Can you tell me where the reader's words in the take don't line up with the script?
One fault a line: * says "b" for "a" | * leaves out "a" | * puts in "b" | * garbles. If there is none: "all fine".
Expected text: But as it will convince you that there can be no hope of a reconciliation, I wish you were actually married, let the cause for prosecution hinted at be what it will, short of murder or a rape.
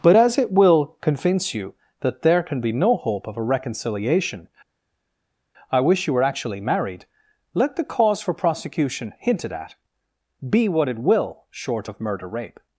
* leaves out "or a"